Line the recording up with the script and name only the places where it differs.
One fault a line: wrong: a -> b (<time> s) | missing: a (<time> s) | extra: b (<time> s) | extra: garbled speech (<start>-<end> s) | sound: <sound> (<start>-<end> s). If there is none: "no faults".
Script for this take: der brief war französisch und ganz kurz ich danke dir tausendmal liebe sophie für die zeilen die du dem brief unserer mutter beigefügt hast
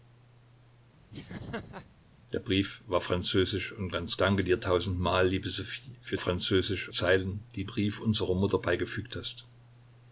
sound: laugh (1.1-1.9 s)
missing: kurz ich (4.2 s)
wrong: die -> französisch (6.2 s)
missing: du dem (7.6 s)